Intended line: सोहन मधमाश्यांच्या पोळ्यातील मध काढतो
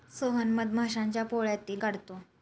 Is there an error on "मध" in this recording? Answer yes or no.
yes